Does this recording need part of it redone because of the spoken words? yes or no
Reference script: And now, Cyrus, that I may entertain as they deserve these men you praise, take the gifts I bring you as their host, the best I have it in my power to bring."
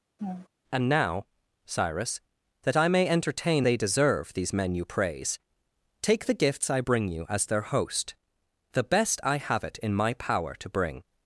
yes